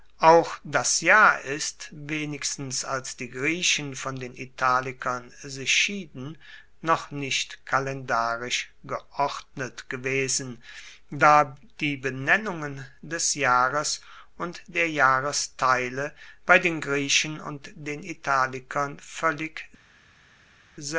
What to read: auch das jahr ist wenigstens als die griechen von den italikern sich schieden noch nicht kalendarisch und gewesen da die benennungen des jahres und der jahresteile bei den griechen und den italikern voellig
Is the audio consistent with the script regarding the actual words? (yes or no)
no